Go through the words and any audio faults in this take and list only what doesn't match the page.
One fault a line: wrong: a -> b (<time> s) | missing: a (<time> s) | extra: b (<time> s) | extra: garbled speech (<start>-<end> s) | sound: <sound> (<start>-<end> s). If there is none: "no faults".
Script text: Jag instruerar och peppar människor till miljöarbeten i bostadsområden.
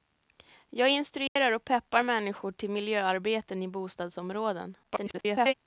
sound: dropout (1.3-1.4 s)
extra: garbled speech (4.8-5.5 s)